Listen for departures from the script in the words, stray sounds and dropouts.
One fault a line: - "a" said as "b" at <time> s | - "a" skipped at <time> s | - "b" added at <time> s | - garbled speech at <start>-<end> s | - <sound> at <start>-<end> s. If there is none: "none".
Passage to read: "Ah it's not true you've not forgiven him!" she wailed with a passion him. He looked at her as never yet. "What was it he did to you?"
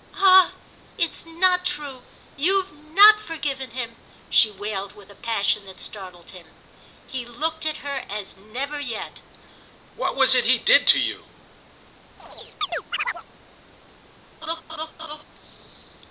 - "that startled" added at 5.7 s
- chirp at 12.2-13.2 s
- laugh at 14.4-15.2 s